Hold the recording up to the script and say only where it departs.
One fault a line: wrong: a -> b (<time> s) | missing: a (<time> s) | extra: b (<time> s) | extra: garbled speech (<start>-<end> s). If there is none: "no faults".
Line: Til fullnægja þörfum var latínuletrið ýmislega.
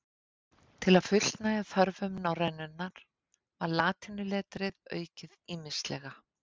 extra: að (1.0 s)
extra: norrænunnar (2.2 s)
extra: aukið (5.0 s)